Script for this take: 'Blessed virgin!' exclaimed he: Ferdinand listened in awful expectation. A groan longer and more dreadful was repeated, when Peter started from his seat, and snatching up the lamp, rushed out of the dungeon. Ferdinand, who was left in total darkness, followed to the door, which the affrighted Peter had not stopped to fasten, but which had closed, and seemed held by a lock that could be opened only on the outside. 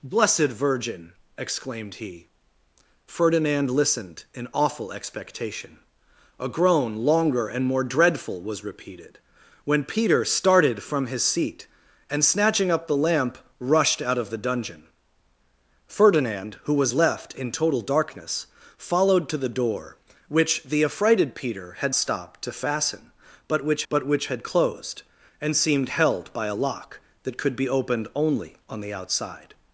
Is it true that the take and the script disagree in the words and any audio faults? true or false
true